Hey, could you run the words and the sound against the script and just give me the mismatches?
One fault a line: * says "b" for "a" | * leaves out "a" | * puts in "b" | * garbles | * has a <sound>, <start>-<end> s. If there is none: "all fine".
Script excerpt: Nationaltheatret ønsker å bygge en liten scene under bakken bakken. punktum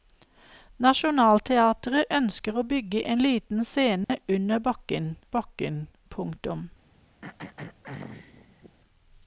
* has a dropout, 4.0-4.1 s
* has a throat clearing, 7.2-8.8 s